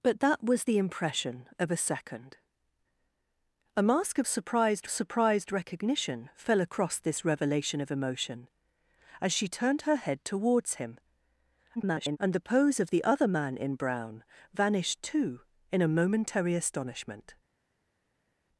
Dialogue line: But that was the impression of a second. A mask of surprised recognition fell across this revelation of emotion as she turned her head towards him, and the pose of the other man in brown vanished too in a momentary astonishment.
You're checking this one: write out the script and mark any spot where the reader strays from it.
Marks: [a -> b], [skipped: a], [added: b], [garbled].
But that was the impression of a second. A mask of surprised [added: surprised] recognition fell across this revelation of emotion as she turned her head towards him, [garbled] and the pose of the other man in brown vanished too in a momentary astonishment.